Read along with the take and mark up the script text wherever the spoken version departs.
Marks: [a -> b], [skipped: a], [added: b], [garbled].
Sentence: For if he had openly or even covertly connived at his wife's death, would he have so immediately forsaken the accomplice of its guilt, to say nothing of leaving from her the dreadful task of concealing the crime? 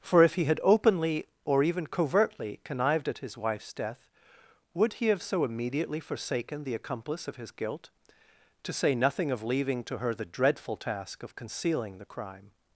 For if he had openly or even covertly connived at his wife's death, would he have so immediately forsaken the accomplice of [its -> his] guilt, to say nothing of leaving [from -> to] her the dreadful task of concealing the crime?